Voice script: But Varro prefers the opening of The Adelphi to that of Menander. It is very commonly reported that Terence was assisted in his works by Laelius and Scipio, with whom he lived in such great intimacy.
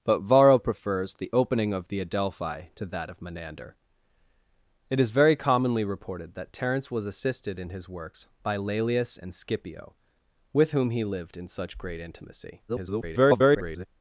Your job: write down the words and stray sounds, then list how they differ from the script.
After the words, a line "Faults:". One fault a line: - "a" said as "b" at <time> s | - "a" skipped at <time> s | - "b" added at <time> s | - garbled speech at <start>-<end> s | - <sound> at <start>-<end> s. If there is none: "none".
But Varro prefers the opening of The Adelphi to that of Menander. It is very commonly reported that Terence was assisted in his works by Laelius and Scipio, with whom he lived in such great intimacy. [garbled]
Faults:
- garbled speech at 12.7-13.9 s